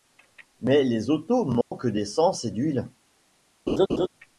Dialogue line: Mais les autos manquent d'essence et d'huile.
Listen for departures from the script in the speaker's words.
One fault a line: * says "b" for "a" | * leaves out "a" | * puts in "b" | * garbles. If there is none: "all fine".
all fine